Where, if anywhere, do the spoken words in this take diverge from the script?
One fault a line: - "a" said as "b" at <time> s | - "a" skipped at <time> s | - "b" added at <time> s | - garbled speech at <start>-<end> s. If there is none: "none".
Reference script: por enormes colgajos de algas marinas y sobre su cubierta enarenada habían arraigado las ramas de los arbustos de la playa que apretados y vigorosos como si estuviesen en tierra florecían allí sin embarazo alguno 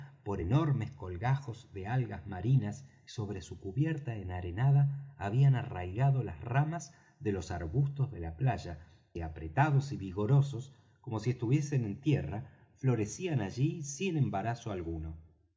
none